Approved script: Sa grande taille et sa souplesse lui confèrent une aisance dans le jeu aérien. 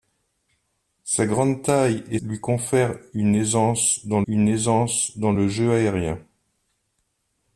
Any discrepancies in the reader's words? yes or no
yes